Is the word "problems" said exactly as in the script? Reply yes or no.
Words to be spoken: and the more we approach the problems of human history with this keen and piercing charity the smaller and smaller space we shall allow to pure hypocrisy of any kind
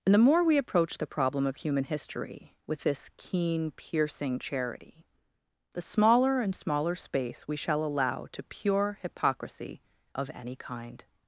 no